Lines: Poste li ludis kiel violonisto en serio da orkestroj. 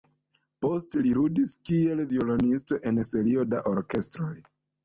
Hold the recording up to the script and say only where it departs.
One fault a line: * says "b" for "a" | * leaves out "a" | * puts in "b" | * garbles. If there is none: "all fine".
all fine